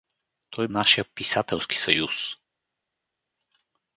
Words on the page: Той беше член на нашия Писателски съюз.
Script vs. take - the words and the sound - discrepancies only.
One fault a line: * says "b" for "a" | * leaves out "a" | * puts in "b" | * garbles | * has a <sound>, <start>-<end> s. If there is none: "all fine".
* leaves out "беше член на"